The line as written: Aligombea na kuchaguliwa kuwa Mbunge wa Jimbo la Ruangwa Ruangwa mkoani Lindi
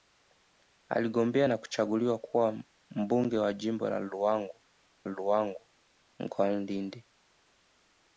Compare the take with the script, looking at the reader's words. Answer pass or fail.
pass